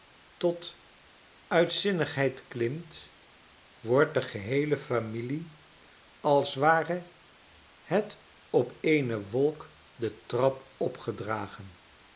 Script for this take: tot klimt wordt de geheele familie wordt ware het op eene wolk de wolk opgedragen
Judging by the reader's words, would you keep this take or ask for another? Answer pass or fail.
fail